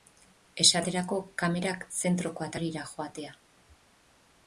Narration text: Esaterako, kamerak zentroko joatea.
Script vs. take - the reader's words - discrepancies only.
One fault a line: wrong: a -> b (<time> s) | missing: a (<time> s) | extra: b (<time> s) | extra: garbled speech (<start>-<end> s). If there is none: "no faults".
extra: atarira (2.5 s)